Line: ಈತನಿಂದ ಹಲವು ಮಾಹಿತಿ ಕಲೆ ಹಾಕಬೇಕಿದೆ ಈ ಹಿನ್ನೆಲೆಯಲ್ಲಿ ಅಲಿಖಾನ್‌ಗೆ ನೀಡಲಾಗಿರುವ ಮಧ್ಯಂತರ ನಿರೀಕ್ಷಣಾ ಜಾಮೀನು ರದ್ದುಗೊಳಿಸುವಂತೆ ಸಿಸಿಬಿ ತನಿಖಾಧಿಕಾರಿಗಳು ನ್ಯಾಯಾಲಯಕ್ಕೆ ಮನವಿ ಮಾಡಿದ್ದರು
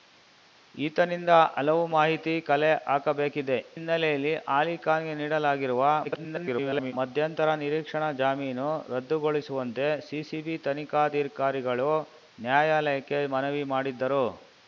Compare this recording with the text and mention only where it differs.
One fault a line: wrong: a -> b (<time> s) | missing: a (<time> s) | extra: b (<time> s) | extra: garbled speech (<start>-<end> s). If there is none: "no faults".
missing: ಈ (3.6 s)
extra: garbled speech (6.0-6.9 s)